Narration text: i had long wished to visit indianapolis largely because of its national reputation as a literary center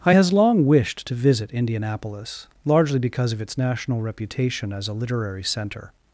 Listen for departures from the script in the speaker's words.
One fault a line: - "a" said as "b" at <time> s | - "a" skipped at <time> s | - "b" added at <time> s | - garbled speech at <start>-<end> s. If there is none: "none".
- "had" said as "has" at 0.1 s